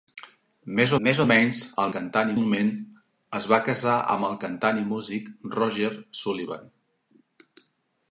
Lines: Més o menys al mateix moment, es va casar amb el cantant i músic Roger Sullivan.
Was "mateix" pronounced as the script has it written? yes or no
no